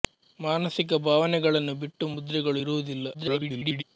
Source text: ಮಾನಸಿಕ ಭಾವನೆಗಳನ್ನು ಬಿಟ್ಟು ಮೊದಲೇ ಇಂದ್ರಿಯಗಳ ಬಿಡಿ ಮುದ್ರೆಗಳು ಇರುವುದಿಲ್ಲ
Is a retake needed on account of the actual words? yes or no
yes